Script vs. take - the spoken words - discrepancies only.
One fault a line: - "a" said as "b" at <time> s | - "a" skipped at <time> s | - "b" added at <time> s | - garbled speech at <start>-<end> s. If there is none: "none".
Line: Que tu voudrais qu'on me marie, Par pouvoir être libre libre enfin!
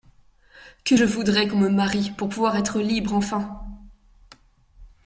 - "tu" said as "je" at 0.9 s
- "Par" said as "Pour" at 2.1 s
- "libre" skipped at 3.1 s